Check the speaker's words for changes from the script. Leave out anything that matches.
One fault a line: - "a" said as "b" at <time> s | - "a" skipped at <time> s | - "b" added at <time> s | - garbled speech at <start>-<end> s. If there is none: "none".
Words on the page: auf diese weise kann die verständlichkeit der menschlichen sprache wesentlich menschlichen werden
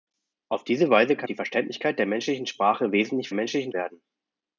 none